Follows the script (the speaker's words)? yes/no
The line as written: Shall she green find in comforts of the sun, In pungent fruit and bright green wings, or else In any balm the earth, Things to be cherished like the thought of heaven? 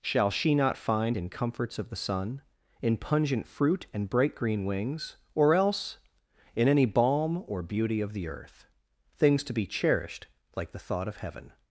no